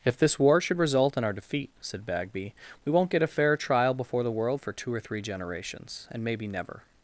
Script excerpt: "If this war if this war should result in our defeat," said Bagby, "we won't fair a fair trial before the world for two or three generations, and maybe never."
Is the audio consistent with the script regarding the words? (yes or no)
no